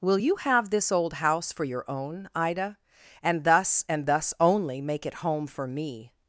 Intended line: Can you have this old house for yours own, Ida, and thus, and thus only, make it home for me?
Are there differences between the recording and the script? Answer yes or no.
yes